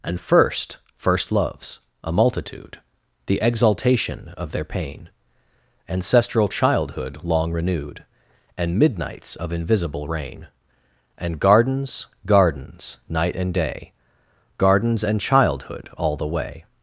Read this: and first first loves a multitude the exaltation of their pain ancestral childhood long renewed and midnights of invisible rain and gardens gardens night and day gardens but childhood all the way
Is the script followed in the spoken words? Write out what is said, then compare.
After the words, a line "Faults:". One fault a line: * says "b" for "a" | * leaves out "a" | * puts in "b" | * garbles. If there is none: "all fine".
and first first loves a multitude the exaltation of their pain ancestral childhood long renewed and midnights of invisible rain and gardens gardens night and day gardens and childhood all the way
Faults:
* says "and" for "but"